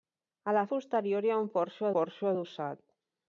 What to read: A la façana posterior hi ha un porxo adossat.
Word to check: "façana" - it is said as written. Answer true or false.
false